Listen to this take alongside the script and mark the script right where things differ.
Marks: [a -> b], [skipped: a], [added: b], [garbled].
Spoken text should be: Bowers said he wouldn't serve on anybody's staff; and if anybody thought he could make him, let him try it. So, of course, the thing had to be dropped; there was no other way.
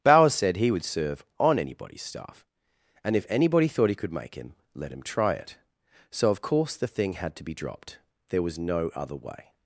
Bowers said he [wouldn't -> would] serve on anybody's staff; and if anybody thought he could make him, let him try it. So, of course, the thing had to be dropped; there was no other way.